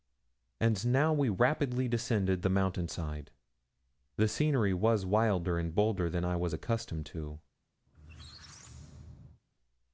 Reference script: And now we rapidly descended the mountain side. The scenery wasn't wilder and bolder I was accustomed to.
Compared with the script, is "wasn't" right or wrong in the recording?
wrong